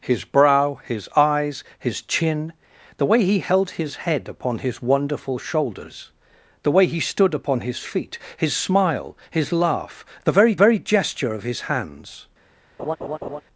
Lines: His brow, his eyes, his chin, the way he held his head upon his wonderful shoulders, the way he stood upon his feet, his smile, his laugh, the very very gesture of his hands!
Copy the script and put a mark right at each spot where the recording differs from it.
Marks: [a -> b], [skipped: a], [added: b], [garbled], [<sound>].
His brow, his eyes, his chin, the way he held his head upon his wonderful shoulders, the way he stood upon his feet, his smile, his laugh, the very very gesture of his hands! [laugh]